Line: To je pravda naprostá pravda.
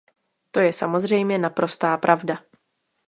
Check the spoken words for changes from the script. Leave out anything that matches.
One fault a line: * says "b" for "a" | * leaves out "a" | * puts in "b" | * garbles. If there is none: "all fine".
* says "samozřejmě" for "pravda"